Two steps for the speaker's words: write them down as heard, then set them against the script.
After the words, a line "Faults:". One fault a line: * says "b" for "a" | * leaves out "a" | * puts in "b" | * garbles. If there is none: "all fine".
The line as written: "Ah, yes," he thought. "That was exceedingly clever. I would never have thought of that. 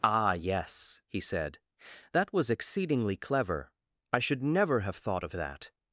"Ah, yes," he said. "That was exceedingly clever. I should never have thought of that.
Faults:
* says "said" for "thought"
* says "should" for "would"